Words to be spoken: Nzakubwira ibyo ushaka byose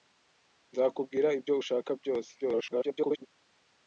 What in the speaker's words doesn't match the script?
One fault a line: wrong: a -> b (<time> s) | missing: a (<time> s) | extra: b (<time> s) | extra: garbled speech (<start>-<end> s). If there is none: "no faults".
extra: garbled speech (2.4-3.3 s)